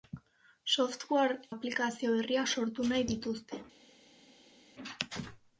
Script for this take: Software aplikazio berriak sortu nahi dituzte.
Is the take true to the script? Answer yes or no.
yes